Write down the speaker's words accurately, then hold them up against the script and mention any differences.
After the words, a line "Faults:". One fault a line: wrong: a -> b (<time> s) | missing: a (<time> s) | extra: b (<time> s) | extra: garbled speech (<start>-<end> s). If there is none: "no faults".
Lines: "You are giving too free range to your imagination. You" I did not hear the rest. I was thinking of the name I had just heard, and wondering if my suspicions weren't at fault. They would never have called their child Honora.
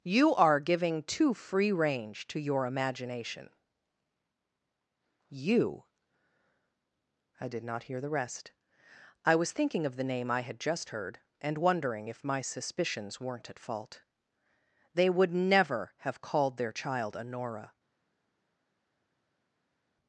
"You are giving too free range to your imagination. You" I did not hear the rest. I was thinking of the name I had just heard, and wondering if my suspicions weren't at fault. They would never have called their child Honora.
Faults:
no faults